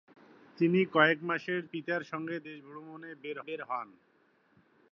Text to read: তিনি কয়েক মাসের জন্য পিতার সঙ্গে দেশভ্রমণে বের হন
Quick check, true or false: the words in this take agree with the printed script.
false